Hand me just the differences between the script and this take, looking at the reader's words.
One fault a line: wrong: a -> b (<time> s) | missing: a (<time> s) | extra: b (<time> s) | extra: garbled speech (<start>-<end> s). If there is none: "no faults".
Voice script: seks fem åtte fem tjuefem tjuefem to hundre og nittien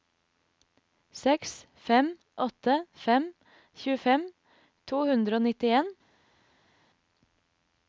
missing: tjuefem (4.2 s)